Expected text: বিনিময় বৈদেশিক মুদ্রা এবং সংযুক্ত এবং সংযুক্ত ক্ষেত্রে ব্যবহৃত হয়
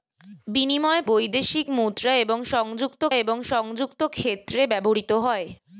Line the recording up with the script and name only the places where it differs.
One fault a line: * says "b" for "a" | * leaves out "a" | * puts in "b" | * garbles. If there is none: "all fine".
all fine